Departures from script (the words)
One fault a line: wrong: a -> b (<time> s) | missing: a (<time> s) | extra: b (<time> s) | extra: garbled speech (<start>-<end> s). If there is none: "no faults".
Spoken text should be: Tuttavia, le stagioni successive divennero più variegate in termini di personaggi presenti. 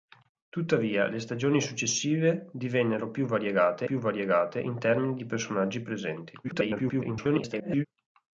extra: più variegate (3.8 s)
extra: garbled speech (6.4-7.9 s)